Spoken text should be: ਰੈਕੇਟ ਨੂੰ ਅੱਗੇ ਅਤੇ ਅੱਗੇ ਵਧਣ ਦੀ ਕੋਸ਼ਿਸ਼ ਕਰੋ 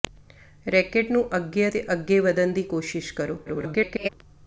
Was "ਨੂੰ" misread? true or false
false